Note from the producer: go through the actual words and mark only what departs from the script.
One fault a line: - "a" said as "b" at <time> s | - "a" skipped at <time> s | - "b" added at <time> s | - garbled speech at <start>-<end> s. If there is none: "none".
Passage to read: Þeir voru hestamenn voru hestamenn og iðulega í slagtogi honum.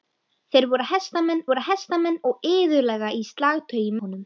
none